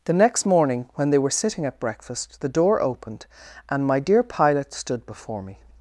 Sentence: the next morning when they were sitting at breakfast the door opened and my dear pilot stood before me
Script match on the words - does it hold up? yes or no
yes